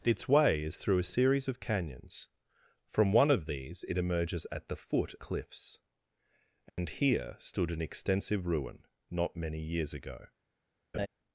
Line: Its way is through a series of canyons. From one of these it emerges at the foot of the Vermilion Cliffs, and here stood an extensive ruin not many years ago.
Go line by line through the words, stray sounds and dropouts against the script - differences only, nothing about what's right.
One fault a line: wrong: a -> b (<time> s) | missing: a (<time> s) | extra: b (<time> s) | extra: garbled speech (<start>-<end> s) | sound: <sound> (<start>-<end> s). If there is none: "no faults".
missing: of the Vermilion (5.1 s)
sound: dropout (6.7-6.8 s)
sound: laugh (10.9-11.1 s)